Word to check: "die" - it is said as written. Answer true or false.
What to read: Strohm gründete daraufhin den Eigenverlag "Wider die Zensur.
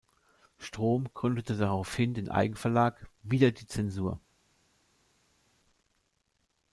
true